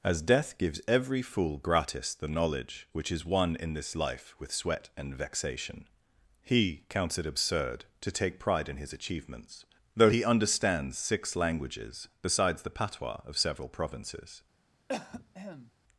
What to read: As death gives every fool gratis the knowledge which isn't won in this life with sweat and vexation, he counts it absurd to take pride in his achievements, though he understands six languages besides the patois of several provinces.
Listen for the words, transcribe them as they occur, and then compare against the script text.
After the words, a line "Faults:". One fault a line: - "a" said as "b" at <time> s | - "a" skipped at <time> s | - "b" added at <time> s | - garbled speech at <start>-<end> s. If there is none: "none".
As death gives every fool gratis the knowledge which is won in this life with sweat and vexation, he counts it absurd to take pride in his achievements, though he understands six languages besides the patois of several provinces.
Faults:
- "isn't" said as "is" at 3.1 s